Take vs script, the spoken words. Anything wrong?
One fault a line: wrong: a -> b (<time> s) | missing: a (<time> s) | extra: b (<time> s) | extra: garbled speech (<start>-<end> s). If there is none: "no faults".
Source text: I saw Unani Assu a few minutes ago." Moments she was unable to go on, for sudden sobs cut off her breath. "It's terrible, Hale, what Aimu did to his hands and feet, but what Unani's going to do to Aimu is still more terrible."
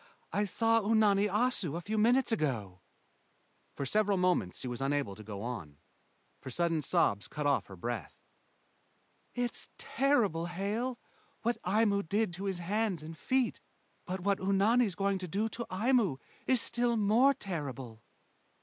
extra: For several (3.8 s)